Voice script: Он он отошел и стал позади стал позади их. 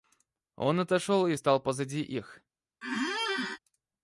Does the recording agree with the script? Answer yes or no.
no